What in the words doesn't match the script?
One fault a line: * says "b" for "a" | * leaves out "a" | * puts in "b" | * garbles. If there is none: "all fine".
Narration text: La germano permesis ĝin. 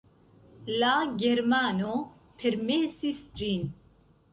all fine